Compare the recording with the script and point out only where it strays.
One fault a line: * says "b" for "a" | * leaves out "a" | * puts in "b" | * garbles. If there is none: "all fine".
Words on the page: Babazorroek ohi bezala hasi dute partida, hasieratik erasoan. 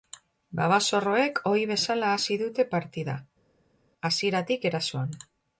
all fine